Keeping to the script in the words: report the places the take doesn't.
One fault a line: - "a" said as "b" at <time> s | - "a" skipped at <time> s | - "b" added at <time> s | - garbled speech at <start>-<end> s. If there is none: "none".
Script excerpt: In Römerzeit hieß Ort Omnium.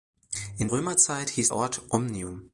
none